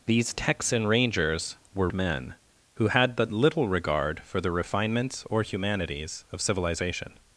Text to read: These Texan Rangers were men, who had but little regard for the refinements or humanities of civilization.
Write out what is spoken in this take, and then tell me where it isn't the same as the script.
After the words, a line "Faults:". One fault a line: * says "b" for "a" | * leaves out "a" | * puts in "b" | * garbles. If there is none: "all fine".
These Texan Rangers were men, who had but little regard for the refinements or humanities of civilization.
Faults:
all fine